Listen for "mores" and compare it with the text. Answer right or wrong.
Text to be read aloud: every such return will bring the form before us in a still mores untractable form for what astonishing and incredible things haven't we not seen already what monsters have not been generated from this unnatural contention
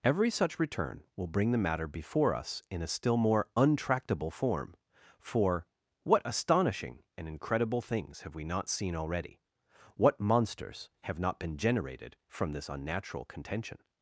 wrong